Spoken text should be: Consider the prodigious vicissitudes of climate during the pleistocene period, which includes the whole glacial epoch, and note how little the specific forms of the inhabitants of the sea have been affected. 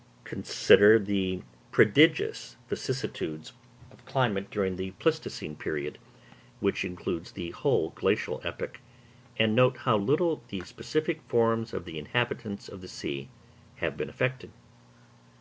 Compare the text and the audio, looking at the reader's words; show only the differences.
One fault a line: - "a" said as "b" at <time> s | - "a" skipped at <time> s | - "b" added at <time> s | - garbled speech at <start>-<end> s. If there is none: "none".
none